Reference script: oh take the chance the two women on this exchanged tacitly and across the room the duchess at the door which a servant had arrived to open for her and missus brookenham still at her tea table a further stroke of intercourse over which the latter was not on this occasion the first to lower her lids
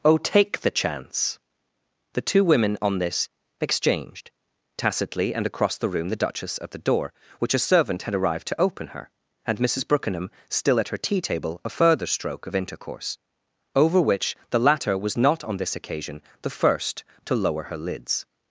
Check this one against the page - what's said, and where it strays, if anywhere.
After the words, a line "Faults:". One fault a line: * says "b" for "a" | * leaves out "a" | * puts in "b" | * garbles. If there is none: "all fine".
oh take the chance the two women on this exchanged tacitly and across the room the duchess at the door which a servant had arrived to open her and missus brookenham still at her tea table a further stroke of intercourse over which the latter was not on this occasion the first to lower her lids
Faults:
* leaves out "for"